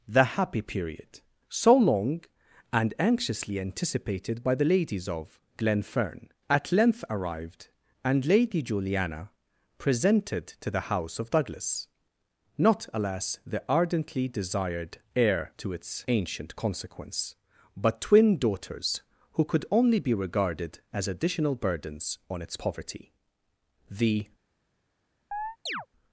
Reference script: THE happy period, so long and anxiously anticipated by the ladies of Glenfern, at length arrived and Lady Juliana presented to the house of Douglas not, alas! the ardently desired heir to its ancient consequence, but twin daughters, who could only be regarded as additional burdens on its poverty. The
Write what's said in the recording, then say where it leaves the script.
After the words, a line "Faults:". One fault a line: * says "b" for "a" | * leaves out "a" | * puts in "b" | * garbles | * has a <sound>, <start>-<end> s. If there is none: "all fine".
THE happy period, so long and anxiously anticipated by the ladies of Glenfern, at length arrived and Lady Juliana presented to the house of Douglas not, alas! the ardently desired heir to its ancient consequence, but twin daughters, who could only be regarded as additional burdens on its poverty. The
Faults:
* has a chirp, 25.3-25.9 s